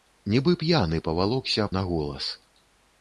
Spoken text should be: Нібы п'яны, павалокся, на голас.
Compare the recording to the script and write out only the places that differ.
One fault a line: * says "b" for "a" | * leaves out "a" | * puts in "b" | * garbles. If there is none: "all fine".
all fine